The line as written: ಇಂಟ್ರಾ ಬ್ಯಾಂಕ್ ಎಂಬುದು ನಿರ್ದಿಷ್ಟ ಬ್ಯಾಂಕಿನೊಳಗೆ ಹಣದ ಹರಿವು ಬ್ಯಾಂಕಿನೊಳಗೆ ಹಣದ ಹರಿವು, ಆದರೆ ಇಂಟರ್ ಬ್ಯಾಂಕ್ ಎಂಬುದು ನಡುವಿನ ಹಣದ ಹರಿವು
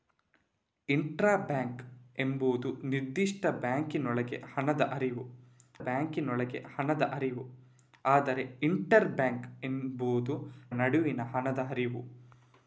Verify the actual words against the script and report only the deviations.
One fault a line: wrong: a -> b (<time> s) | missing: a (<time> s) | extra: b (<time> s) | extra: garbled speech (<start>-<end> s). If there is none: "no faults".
no faults